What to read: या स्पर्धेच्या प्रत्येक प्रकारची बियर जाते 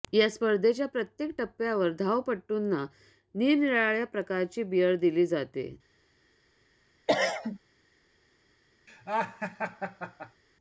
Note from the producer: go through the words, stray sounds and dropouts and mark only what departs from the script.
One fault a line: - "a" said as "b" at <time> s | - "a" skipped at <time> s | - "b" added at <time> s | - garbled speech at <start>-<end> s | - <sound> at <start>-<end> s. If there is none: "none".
- "टप्प्यावर धावपटूंना निरनिराळ्या" added at 1.4 s
- "दिली" added at 5.0 s
- cough at 7.1-7.6 s
- laugh at 8.9-10.4 s